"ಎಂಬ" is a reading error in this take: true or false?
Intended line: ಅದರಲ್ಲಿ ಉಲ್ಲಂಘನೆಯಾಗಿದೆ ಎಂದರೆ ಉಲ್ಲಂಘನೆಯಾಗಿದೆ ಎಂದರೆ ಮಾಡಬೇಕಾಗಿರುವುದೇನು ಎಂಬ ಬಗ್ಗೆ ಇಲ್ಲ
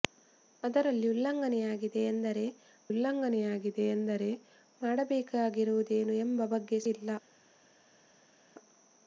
false